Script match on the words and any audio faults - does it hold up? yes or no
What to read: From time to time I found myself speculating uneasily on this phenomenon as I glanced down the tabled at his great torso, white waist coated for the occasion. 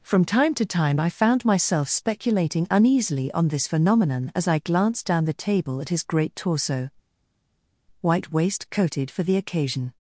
no